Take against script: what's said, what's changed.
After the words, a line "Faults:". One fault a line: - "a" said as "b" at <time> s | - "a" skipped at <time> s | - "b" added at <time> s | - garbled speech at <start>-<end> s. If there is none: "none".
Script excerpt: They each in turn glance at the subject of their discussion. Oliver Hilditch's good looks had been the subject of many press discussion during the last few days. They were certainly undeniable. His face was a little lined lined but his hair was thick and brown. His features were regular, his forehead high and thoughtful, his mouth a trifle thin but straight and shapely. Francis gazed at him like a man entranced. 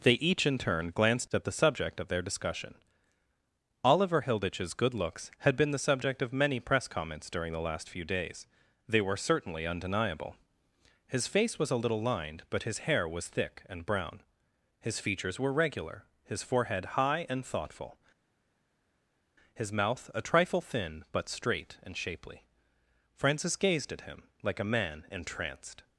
They each in turn glanced at the subject of their discussion. Oliver Hilditch's good looks had been the subject of many press comments during the last few days. They were certainly undeniable. His face was a little lined but his hair was thick and brown. His features were regular, his forehead high and thoughtful, his mouth a trifle thin but straight and shapely. Francis gazed at him like a man entranced.
Faults:
- "glance" said as "glanced" at 0.9 s
- "discussion" said as "comments" at 6.9 s
- "lined" skipped at 12.4 s